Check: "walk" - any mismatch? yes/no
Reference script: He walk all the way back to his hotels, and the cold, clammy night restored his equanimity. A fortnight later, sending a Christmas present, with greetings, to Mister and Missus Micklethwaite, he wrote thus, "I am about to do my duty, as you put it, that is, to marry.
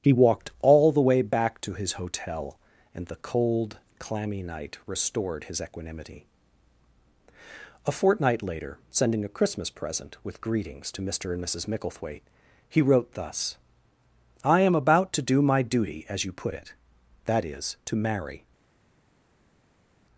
yes